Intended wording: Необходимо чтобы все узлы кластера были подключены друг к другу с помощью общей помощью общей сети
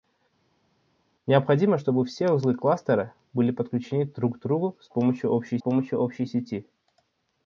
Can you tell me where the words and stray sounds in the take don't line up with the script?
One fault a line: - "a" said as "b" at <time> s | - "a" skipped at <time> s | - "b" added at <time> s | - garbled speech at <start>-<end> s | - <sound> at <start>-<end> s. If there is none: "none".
none